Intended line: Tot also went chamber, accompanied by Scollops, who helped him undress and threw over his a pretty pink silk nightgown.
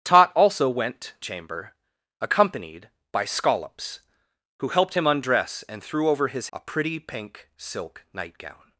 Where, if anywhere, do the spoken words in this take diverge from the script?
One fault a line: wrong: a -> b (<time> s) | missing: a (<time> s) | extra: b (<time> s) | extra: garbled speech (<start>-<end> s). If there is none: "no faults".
no faults